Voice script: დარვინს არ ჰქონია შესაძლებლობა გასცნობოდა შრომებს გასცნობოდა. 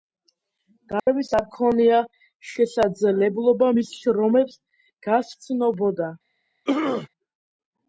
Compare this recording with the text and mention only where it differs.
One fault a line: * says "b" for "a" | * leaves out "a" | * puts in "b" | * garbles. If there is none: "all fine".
* says "მის" for "გასცნობოდა"